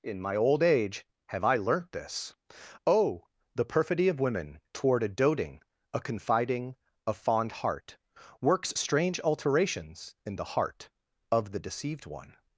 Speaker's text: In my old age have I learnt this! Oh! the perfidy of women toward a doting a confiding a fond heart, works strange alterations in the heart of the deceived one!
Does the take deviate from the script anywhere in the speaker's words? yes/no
no